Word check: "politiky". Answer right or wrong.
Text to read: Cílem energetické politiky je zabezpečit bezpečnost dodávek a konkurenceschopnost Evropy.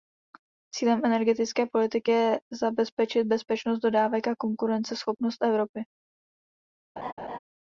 right